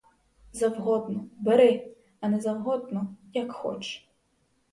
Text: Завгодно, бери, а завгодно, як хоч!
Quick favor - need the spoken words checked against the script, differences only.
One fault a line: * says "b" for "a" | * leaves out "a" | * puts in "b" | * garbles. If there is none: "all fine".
* puts in "не"